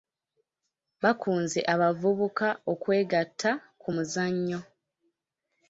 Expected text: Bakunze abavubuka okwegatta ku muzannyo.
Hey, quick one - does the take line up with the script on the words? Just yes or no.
yes